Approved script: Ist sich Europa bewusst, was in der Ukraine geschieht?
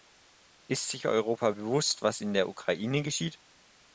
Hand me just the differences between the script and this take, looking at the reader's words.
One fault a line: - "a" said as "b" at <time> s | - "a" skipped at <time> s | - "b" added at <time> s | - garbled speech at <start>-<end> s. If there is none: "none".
none